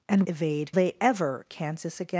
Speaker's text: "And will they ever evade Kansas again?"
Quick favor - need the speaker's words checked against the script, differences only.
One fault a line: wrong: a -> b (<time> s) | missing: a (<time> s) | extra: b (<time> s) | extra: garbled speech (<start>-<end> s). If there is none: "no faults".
wrong: will -> evade (0.3 s)
missing: evade (1.5 s)